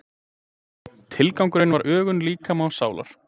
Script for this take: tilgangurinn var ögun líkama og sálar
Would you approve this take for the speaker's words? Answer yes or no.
yes